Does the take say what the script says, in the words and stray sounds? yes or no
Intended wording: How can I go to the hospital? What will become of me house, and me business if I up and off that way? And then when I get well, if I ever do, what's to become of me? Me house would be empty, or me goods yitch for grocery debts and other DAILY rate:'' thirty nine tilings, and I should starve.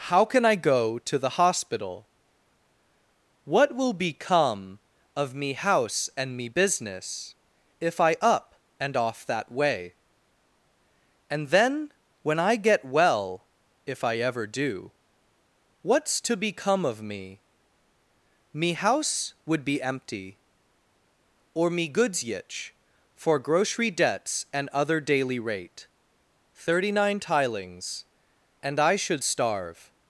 yes